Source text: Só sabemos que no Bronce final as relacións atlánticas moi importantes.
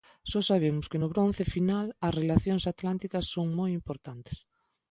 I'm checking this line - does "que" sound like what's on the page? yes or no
yes